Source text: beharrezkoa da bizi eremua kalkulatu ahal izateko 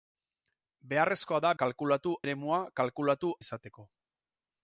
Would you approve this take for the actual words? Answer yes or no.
no